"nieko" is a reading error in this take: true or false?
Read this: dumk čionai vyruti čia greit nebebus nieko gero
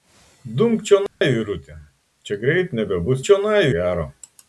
true